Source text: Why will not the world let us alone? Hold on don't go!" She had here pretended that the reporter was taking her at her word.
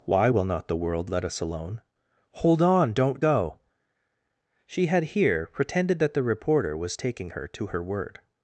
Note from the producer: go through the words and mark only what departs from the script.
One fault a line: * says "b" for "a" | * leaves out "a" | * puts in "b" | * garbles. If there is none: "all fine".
* says "to" for "at"